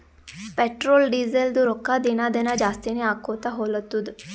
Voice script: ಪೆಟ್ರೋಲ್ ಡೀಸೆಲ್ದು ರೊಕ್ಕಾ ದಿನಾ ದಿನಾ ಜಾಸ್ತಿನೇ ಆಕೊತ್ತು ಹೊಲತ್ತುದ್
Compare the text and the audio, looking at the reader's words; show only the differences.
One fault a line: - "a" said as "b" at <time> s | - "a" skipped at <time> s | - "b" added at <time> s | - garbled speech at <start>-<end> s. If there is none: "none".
none